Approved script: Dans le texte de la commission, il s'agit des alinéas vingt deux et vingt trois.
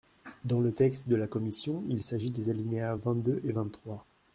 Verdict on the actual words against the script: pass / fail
pass